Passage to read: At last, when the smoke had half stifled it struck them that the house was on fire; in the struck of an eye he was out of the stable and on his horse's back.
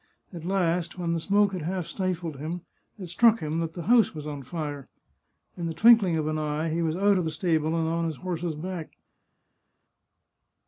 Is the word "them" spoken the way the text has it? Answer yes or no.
no